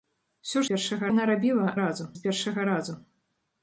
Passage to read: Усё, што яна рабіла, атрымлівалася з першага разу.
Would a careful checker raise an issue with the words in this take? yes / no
yes